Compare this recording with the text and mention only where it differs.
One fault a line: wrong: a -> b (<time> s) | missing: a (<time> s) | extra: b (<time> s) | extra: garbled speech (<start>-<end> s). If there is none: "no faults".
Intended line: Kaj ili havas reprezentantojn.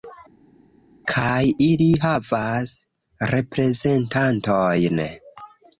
no faults